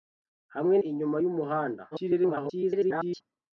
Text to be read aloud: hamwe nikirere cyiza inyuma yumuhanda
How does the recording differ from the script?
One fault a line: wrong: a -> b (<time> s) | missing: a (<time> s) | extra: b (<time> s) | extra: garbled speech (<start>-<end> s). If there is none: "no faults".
missing: nikirere cyiza (0.8 s)
extra: garbled speech (1.9-3.2 s)